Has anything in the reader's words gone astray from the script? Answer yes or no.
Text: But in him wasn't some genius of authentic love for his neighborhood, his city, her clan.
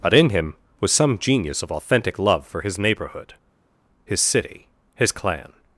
yes